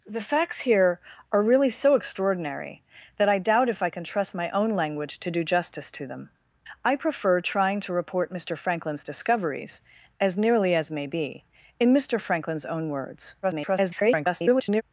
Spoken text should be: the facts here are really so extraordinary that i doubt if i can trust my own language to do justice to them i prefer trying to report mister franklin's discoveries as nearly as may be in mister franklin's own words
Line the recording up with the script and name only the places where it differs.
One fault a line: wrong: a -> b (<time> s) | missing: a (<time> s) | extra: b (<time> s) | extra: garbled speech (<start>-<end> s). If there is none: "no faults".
extra: garbled speech (13.4-14.8 s)